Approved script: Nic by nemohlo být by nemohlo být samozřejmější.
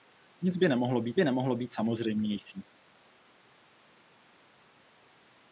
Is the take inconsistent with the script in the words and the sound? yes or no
no